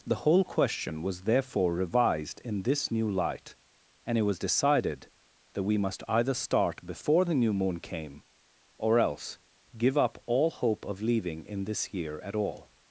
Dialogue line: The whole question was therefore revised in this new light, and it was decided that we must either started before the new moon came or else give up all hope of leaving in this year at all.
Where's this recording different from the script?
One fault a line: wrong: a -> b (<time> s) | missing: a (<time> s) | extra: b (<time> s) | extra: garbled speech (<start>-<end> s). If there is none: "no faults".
wrong: started -> start (6.3 s)